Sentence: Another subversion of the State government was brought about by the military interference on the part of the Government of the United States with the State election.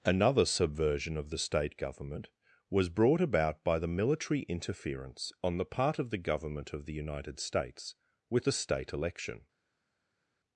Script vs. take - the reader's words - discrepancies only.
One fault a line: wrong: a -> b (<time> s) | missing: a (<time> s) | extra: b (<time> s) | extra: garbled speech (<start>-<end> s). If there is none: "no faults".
no faults